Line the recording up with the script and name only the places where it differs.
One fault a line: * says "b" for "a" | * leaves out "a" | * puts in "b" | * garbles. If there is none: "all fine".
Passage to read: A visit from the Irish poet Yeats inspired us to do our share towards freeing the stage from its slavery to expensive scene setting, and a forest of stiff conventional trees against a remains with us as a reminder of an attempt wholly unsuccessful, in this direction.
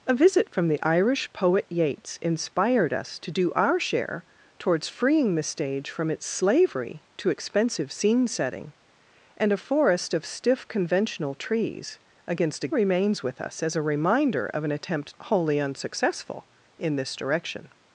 all fine